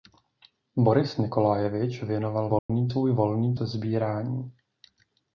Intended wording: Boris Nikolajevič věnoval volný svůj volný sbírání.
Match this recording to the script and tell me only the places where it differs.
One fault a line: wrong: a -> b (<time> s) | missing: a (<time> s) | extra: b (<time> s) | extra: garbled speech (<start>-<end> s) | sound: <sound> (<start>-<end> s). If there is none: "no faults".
sound: dropout (2.6-2.7 s)